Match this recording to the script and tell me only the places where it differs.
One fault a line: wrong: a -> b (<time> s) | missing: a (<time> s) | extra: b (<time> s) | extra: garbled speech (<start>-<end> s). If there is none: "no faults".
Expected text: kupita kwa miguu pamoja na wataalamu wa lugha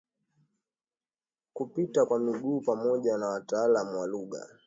no faults